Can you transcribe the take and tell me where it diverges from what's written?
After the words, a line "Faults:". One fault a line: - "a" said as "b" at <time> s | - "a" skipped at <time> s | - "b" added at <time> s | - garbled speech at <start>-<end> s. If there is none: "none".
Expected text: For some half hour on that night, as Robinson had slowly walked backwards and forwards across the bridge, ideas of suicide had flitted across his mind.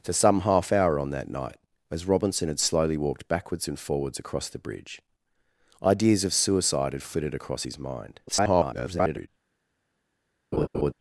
For some half hour on that night, as Robinson had slowly walked backwards and forwards across the bridge, ideas of suicide had flitted across his mind. [garbled]
Faults:
- garbled speech at 8.3-9.3 s